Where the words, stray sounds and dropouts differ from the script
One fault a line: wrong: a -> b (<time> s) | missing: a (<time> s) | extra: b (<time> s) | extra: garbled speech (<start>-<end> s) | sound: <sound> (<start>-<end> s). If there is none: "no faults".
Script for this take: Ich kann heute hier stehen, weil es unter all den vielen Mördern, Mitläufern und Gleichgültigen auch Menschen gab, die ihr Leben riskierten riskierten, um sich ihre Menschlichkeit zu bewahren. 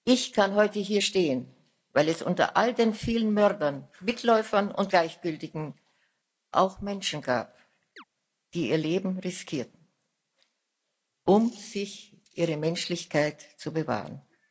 sound: chirp (8.0-8.0 s)
missing: riskierten (9.8 s)